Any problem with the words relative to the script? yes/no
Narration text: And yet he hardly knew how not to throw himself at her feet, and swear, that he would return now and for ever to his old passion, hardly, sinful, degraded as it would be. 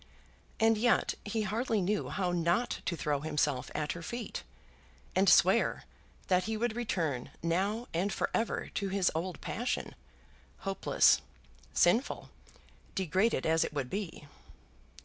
yes